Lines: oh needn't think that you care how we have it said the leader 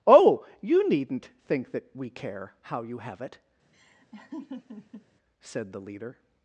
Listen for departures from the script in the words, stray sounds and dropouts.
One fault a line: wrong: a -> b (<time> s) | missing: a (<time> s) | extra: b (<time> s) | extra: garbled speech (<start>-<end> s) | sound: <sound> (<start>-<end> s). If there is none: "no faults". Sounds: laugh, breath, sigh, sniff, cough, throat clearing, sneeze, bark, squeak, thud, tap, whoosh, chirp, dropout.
extra: you (0.6 s)
wrong: you -> we (1.9 s)
wrong: we -> you (2.8 s)
sound: laugh (3.7-5.1 s)